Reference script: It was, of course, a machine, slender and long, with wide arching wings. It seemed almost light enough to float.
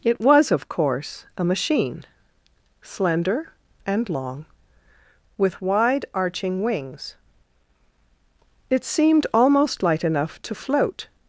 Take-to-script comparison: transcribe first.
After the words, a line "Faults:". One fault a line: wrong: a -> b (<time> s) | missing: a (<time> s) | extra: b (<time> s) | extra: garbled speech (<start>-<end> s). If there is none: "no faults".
It was, of course, a machine, slender and long, with wide arching wings. It seemed almost light enough to float.
Faults:
no faults